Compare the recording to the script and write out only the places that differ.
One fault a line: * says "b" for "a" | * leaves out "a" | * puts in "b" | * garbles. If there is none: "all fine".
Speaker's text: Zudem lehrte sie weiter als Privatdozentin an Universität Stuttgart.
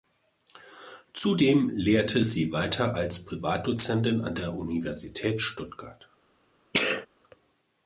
* puts in "der"